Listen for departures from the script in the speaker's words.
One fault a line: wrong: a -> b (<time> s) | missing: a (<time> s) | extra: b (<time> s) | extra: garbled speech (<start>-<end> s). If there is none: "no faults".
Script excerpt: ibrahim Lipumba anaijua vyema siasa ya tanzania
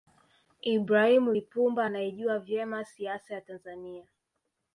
no faults